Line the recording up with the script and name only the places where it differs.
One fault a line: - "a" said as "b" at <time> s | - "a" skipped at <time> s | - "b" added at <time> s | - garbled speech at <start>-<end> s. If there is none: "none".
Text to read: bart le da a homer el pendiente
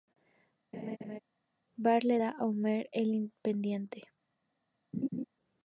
none